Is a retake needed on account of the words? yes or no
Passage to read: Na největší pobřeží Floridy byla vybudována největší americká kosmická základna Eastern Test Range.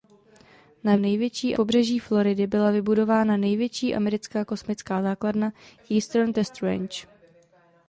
no